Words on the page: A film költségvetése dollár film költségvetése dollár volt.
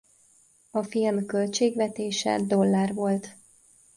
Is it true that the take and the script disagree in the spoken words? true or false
true